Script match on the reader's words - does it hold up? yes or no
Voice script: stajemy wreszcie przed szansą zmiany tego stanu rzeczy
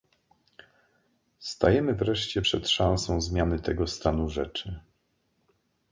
yes